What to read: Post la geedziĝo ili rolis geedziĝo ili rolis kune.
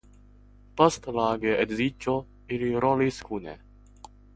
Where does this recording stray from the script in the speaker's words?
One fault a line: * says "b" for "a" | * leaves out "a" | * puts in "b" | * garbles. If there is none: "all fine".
* leaves out "geedziĝo ili rolis"